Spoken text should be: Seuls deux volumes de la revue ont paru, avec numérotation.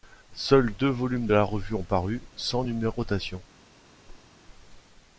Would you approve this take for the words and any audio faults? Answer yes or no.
no